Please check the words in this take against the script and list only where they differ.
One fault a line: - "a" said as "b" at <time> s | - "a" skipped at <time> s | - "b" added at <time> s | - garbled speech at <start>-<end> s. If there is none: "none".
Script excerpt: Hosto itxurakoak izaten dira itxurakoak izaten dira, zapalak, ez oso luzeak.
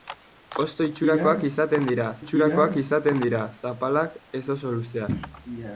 none